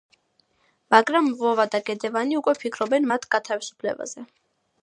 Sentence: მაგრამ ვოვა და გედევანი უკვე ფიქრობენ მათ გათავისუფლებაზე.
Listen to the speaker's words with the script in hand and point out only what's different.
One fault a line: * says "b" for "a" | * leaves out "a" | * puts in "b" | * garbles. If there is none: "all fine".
all fine